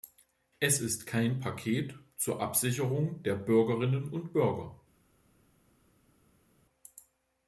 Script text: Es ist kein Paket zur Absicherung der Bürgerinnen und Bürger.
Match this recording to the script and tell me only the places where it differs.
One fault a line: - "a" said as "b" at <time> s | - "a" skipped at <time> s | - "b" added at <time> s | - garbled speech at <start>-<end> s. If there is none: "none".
none